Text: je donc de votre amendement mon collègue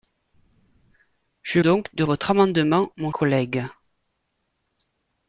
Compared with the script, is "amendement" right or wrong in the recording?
right